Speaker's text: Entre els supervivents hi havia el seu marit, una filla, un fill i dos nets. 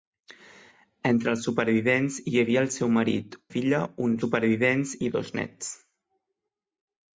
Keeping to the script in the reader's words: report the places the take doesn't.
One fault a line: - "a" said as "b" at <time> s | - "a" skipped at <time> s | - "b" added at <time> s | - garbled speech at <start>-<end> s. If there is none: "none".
- "una" skipped at 3.4 s
- "fill" said as "supervivents" at 4.2 s